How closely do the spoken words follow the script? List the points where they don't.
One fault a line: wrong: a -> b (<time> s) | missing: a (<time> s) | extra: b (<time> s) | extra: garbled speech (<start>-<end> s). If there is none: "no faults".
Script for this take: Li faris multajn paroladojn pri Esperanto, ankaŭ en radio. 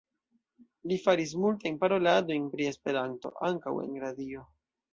no faults